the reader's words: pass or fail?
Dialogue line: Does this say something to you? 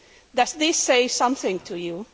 pass